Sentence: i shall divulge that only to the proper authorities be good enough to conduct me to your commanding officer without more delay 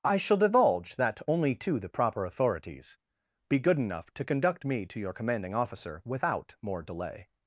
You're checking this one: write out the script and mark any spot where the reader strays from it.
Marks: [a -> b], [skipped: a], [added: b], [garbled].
i shall divulge that only to the proper authorities be good enough to conduct me to your commanding officer without more delay